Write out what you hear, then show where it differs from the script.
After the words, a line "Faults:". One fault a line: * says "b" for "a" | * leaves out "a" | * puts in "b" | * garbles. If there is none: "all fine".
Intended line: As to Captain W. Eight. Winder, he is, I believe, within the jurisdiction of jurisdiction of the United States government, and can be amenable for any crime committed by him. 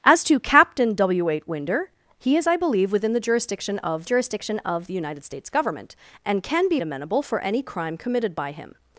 As to Captain W. Eight. Winder, he is, I believe, within the jurisdiction of jurisdiction of the United States government, and can be amenable for any crime committed by him.
Faults:
all fine